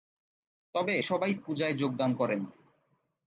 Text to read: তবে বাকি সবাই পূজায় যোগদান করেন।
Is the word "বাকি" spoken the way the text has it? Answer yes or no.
no